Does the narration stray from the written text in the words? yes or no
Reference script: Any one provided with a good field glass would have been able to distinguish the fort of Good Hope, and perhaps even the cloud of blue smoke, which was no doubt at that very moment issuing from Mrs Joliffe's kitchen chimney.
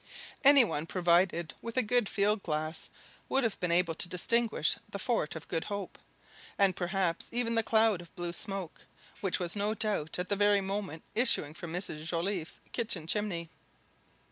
no